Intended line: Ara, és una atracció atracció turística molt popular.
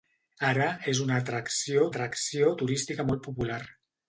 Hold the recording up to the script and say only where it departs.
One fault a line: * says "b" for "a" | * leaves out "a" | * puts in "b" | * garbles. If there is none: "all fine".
all fine